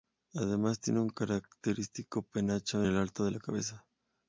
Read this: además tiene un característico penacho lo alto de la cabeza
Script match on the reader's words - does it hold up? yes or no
yes